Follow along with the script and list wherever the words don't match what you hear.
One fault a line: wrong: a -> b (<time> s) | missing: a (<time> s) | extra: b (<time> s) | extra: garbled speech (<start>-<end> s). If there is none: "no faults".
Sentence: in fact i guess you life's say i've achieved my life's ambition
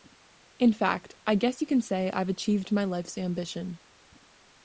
wrong: life's -> can (1.7 s)